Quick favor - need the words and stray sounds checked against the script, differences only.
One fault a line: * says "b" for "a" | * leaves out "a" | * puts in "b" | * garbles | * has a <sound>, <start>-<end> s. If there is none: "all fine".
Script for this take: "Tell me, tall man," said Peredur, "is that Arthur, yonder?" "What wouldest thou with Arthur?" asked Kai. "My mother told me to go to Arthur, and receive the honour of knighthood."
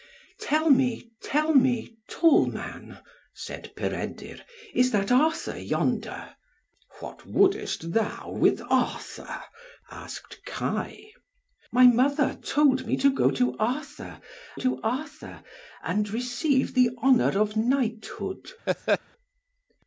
* puts in "tell me"
* puts in "to Arthur"
* has a laugh, 18.7-19.0 s